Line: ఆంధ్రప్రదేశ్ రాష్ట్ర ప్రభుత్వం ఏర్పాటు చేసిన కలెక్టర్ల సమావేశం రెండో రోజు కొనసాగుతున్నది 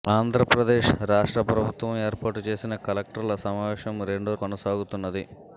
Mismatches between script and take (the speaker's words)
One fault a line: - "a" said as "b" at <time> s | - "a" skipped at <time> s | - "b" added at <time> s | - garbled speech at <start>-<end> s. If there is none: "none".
- "రోజు" skipped at 4.3 s